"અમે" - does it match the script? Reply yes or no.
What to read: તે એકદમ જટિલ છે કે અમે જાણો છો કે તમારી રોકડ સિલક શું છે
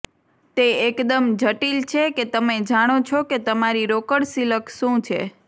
no